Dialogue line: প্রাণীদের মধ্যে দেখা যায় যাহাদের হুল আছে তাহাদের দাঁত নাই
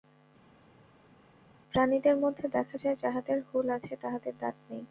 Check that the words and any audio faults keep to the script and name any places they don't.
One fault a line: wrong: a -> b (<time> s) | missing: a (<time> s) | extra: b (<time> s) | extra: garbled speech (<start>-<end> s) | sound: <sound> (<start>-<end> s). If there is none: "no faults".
no faults